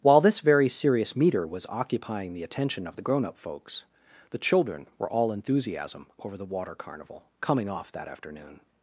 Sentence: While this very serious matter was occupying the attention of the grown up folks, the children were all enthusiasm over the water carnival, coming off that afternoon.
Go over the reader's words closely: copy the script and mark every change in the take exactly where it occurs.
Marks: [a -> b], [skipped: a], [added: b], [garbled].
While this very serious [matter -> meter] was occupying the attention of the grown up folks, the children were all enthusiasm over the water carnival, coming off that afternoon.